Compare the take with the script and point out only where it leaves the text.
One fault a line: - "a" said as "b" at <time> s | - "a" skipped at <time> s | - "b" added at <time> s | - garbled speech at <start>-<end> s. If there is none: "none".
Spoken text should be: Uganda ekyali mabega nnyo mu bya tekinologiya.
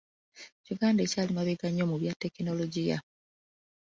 none